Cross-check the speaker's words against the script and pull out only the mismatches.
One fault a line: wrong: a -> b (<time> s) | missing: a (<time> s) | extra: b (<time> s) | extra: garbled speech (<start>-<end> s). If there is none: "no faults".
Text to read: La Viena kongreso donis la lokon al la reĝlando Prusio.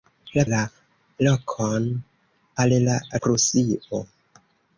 missing: Viena kongreso donis (0.4 s)
missing: reĝlando (3.0 s)